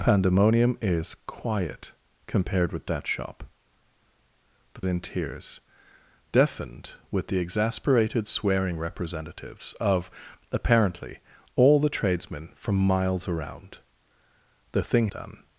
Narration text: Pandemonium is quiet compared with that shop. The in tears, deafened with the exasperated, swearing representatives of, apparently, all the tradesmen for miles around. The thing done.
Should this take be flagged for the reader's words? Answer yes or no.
no